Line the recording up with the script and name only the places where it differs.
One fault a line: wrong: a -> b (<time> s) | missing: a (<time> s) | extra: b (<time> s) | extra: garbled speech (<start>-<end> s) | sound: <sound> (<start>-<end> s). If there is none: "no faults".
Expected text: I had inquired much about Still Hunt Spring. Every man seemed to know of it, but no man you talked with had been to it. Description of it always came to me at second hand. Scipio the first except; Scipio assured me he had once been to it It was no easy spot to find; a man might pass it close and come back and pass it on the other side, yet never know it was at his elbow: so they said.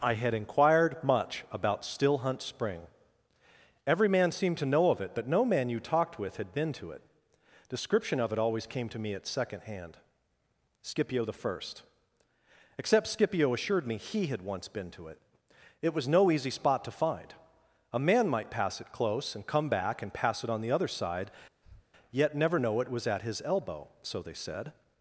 sound: breath (21.6-21.9 s)